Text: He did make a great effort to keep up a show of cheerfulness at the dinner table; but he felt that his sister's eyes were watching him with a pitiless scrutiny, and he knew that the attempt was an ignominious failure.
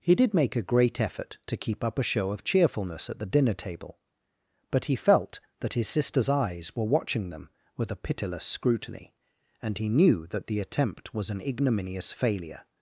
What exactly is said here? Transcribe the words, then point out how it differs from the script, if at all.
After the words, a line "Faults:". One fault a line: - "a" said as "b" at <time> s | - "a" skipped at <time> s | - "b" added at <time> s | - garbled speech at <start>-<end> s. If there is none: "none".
He did make a great effort to keep up a show of cheerfulness at the dinner table; but he felt that his sister's eyes were watching them with a pitiless scrutiny, and he knew that the attempt was an ignominious failure.
Faults:
- "him" said as "them" at 7.3 s